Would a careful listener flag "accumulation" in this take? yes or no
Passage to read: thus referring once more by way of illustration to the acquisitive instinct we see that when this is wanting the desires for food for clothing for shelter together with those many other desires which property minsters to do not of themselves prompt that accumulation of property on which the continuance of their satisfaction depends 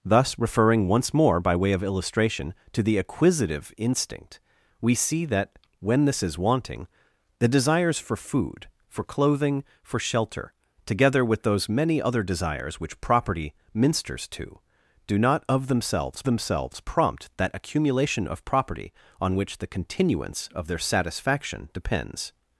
no